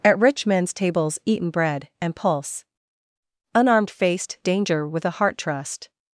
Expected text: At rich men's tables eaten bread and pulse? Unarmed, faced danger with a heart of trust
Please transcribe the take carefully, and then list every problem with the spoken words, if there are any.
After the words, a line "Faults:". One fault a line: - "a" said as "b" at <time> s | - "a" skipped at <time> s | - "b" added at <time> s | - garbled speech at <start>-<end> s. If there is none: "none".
At rich men's tables eaten bread and pulse? Unarmed, faced danger with a heart trust
Faults:
- "of" skipped at 5.4 s